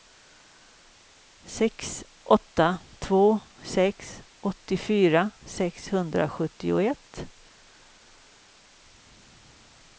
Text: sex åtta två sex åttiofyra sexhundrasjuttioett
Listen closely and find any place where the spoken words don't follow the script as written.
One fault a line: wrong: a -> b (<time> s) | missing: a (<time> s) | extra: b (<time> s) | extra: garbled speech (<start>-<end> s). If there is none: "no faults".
no faults